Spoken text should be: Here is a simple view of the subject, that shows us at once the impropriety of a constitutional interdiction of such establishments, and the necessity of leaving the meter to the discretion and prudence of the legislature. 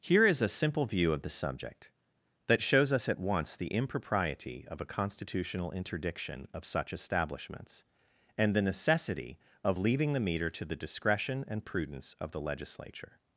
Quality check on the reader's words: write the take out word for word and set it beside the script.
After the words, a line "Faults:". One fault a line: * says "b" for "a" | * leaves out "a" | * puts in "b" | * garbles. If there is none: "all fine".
Here is a simple view of the subject, that shows us at once the impropriety of a constitutional interdiction of such establishments, and the necessity of leaving the meter to the discretion and prudence of the legislature.
Faults:
all fine